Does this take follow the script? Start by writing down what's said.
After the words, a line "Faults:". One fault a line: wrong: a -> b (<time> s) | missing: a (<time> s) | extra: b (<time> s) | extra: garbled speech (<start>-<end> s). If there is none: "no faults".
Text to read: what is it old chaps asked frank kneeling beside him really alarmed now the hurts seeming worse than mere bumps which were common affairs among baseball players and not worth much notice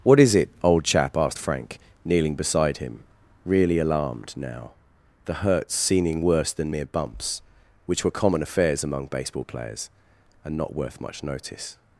what is it old chap asked frank kneeling beside him really alarmed now the hurts seeming worse than mere bumps which were common affairs among baseball players and not worth much notice
Faults:
wrong: chaps -> chap (0.8 s)